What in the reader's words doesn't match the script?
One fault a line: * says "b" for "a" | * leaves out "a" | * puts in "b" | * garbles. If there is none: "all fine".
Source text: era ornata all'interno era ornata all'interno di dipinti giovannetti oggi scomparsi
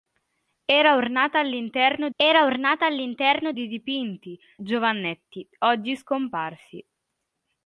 all fine